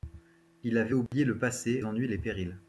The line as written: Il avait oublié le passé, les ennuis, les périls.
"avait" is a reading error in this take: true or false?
false